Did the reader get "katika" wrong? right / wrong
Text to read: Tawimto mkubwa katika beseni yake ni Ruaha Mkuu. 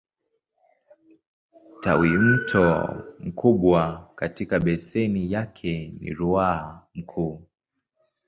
right